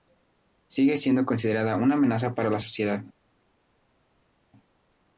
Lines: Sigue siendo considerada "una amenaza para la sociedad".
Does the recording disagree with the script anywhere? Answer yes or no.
no